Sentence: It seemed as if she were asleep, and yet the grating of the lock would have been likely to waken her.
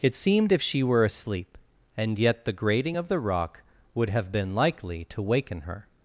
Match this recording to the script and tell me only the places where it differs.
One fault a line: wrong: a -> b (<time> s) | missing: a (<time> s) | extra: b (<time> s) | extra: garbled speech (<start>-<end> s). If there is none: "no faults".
missing: as (0.5 s)
wrong: lock -> rock (3.2 s)